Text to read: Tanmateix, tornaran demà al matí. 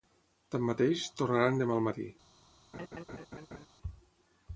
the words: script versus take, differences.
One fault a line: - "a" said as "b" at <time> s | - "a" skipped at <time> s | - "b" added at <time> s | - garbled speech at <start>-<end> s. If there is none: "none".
none